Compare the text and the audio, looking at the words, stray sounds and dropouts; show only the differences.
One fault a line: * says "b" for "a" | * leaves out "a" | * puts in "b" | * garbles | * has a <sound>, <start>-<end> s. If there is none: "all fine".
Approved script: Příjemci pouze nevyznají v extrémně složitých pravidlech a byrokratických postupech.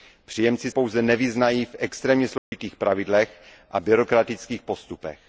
* has a dropout, 2.4-2.5 s